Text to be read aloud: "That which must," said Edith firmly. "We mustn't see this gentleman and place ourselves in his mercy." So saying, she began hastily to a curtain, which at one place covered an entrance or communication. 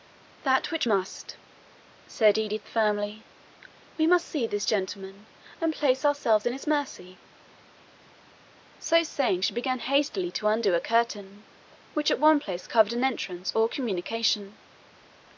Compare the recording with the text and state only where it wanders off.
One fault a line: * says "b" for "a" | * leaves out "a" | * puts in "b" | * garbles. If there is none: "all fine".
* says "must" for "mustn't"
* puts in "undo"